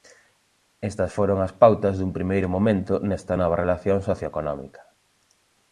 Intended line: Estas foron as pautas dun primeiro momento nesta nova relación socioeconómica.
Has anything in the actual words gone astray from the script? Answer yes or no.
no